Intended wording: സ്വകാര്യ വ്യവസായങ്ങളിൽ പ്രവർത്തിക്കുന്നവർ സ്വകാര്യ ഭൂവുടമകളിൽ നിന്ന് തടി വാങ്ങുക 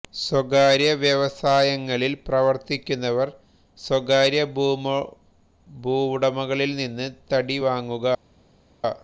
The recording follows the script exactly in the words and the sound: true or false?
true